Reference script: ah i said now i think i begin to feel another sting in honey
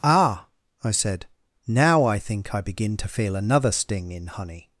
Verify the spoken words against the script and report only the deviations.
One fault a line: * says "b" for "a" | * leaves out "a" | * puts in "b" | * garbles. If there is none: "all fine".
all fine